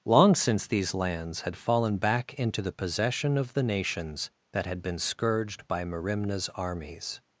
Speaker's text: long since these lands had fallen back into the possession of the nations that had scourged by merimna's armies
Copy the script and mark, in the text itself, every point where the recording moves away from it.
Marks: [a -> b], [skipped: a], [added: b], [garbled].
long since these lands had fallen back into the possession of the nations that had [added: been] scourged by merimna's armies